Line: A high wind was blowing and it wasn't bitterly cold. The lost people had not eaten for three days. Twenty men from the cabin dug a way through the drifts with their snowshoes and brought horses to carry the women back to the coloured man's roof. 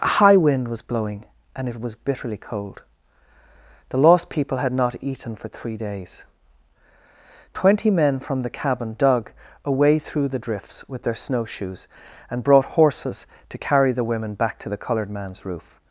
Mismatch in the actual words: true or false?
true